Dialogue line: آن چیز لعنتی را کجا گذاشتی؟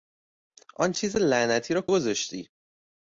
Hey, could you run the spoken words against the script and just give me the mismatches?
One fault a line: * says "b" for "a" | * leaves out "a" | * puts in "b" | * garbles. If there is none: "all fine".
* leaves out "کجا"